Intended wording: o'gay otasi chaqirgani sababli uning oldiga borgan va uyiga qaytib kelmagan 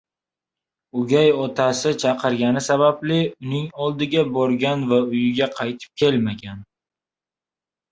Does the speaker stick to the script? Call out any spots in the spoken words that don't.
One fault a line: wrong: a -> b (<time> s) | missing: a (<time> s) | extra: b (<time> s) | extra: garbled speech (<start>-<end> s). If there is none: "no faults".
no faults